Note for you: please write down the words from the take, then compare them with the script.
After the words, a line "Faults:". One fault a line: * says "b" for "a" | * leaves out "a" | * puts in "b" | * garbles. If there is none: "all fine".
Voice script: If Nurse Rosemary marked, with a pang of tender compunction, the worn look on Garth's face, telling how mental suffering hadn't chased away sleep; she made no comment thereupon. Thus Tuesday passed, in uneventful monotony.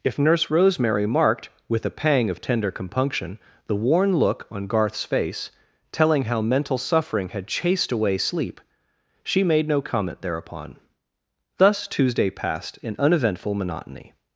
If Nurse Rosemary marked, with a pang of tender compunction, the worn look on Garth's face, telling how mental suffering had chased away sleep; she made no comment thereupon. Thus Tuesday passed, in uneventful monotony.
Faults:
* says "had" for "hadn't"